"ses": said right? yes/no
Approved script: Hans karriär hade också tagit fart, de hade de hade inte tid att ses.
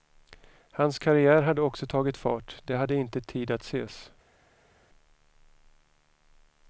yes